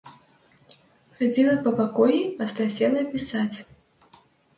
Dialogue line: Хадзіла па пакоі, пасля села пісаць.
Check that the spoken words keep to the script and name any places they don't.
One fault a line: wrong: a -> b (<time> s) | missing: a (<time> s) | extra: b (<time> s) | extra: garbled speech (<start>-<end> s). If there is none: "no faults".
no faults